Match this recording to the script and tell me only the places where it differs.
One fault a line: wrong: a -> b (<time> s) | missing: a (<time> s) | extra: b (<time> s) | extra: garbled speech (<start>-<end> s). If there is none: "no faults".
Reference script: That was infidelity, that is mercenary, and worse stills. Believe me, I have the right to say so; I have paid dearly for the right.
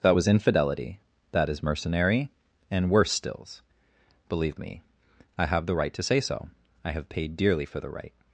no faults